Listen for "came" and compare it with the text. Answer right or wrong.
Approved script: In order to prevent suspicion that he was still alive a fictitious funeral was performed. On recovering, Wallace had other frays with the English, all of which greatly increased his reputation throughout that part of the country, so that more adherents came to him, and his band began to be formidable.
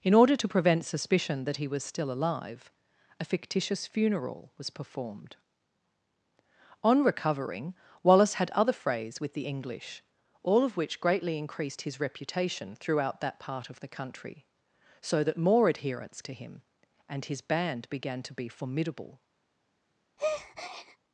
wrong